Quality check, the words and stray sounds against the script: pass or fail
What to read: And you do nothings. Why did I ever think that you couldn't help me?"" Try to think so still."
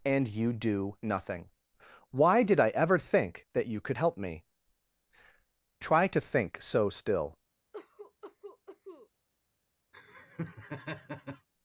fail